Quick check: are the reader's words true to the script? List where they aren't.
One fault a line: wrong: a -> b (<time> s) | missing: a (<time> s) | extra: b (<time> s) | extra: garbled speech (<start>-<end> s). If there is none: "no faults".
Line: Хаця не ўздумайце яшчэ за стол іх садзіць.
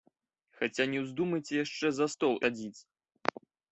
missing: іх (2.3 s)